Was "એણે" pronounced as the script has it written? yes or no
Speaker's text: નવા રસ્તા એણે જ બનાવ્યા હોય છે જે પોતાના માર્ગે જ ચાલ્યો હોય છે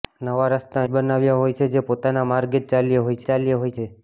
no